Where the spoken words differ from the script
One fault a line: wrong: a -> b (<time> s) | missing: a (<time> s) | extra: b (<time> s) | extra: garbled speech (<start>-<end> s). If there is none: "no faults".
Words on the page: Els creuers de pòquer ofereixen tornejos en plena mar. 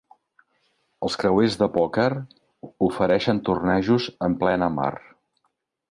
no faults